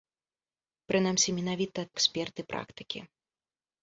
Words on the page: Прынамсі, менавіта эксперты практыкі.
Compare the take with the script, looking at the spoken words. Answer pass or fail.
pass